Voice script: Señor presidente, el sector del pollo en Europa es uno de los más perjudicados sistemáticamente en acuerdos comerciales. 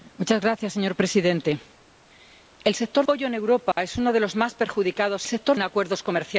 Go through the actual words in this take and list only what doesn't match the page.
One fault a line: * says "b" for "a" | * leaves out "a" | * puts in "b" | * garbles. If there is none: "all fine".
* leaves out "del"
* says "sector" for "sistemáticamente"